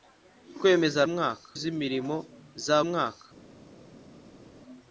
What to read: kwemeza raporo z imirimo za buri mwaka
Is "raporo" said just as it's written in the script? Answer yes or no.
no